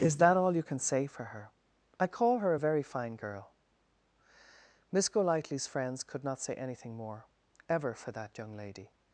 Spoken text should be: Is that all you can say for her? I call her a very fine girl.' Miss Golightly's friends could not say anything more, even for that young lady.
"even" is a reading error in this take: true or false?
true